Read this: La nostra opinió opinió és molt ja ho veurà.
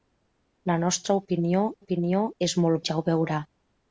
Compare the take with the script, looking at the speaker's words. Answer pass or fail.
pass